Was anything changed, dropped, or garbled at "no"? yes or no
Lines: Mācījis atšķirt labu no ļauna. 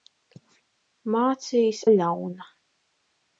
yes